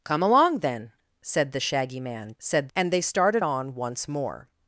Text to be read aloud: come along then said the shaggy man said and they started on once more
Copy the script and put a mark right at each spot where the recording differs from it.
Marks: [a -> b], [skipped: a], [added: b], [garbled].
come along then said the shaggy man said and they started on once more